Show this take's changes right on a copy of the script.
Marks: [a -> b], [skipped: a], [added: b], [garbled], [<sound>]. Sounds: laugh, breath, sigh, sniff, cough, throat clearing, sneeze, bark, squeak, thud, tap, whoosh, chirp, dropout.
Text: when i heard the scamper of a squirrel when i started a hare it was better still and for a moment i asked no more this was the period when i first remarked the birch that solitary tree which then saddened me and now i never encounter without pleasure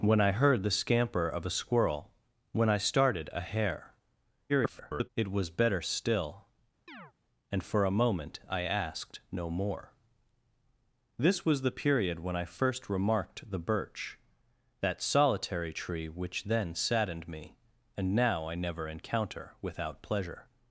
when i heard the scamper of a squirrel when i started a hare [garbled] it was better still [chirp] and for a moment i asked no more this was the period when i first remarked the birch that solitary tree which then saddened me and now i never encounter without pleasure